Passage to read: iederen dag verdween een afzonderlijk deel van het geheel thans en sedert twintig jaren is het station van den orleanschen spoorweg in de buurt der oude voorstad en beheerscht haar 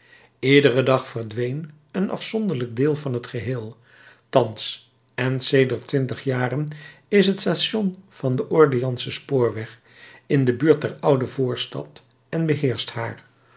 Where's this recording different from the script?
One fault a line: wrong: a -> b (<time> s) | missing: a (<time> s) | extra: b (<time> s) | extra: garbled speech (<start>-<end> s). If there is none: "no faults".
no faults